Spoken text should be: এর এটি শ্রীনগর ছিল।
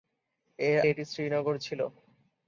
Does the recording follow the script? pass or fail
pass